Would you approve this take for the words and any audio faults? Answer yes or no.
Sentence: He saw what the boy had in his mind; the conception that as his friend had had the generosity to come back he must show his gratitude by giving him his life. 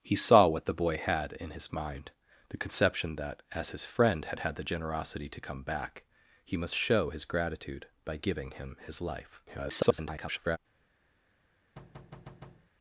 no